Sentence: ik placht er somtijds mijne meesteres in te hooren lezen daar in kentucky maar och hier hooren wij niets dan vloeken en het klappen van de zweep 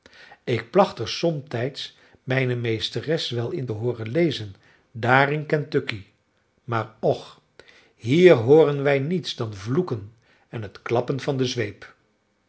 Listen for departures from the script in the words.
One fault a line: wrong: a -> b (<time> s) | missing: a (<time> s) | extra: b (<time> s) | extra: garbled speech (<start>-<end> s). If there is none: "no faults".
extra: wel (3.3 s)